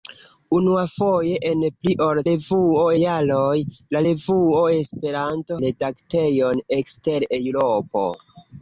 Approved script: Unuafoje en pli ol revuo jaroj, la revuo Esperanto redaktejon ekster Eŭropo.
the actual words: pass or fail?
pass